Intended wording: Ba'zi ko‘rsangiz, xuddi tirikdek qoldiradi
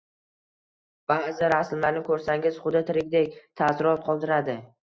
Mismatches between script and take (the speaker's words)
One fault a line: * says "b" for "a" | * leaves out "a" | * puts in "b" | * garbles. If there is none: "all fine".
* puts in "rasmlarni"
* puts in "taassurot"